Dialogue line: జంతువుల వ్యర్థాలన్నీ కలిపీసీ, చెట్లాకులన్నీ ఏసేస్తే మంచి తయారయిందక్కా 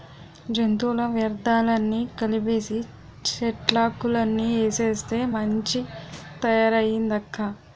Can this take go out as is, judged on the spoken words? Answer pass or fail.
pass